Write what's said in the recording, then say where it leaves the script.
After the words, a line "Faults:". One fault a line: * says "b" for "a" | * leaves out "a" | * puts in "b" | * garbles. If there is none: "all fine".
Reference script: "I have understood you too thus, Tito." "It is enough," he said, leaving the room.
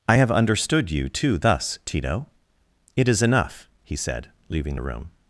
"I have understood you too thus, Tito." "It is enough," he said, leaving the room.
Faults:
all fine